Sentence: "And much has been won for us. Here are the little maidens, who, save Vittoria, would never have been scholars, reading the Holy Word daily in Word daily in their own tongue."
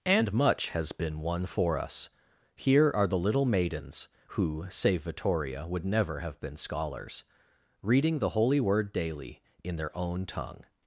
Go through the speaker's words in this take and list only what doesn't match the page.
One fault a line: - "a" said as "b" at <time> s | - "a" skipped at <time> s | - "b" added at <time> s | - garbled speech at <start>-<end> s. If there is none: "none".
- "Word daily in" skipped at 9.8 s